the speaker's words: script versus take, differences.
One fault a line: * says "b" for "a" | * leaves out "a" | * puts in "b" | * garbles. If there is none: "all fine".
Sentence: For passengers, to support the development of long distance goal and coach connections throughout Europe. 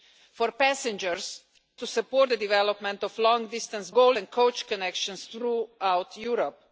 all fine